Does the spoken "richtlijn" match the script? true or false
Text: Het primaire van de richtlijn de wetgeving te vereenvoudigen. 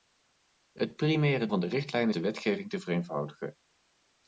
true